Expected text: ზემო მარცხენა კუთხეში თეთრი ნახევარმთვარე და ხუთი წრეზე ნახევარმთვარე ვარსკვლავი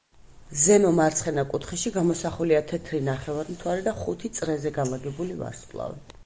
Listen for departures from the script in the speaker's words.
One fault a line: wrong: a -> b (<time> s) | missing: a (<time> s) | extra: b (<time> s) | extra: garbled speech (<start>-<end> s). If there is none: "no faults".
extra: გამოსახულია (2.0 s)
wrong: ნახევარმთვარე -> განლაგებული (4.8 s)